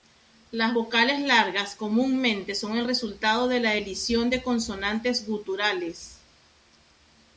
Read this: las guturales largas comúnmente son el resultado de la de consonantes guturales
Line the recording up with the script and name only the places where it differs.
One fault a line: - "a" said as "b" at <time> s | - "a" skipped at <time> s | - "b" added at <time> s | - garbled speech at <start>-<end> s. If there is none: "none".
- "guturales" said as "vocales" at 0.7 s
- "elisión" added at 3.7 s